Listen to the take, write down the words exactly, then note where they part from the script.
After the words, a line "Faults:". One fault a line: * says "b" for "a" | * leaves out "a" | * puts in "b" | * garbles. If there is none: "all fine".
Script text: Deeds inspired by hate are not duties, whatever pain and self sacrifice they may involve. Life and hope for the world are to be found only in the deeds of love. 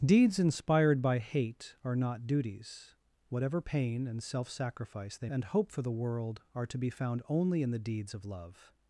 Deeds inspired by hate are not duties, whatever pain and self sacrifice they and hope for the world are to be found only in the deeds of love.
Faults:
* leaves out "may involve Life"